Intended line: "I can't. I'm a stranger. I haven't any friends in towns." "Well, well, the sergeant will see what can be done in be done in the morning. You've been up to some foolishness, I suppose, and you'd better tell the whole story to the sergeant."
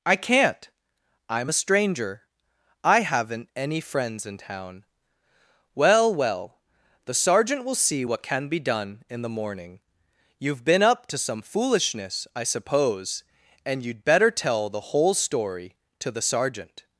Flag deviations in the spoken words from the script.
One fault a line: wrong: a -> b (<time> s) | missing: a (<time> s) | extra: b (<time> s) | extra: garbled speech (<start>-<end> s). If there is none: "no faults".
wrong: towns -> town (4.4 s)
missing: be done in (9.2 s)